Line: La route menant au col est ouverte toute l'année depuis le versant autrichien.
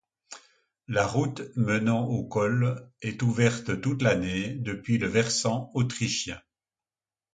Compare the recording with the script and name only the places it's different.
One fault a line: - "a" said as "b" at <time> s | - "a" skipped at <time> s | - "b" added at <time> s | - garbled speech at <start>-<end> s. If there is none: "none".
none